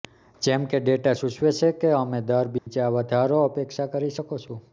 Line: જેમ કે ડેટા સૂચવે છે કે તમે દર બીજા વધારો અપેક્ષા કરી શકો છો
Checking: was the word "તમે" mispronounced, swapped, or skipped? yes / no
yes